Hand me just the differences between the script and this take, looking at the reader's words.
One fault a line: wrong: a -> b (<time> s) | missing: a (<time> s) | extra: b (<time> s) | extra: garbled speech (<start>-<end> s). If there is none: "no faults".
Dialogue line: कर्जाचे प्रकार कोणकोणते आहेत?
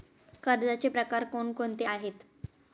no faults